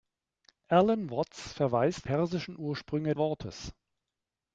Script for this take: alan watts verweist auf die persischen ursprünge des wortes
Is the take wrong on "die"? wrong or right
wrong